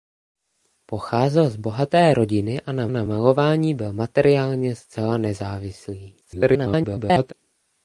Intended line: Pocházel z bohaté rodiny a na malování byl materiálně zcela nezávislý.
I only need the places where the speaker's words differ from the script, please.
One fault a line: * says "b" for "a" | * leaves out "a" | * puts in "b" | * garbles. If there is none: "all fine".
* puts in "na"
* garbles